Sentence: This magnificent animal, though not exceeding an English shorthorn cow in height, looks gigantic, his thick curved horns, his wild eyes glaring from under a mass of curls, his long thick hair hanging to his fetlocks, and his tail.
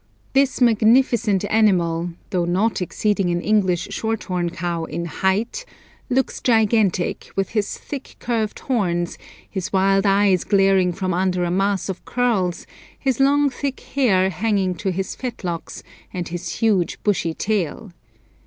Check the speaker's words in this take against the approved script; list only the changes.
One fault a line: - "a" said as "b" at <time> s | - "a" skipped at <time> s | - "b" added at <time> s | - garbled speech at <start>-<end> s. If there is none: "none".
- "with" added at 7.3 s
- "huge bushy" added at 16.6 s